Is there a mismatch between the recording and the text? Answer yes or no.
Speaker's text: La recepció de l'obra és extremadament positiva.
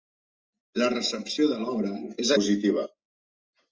yes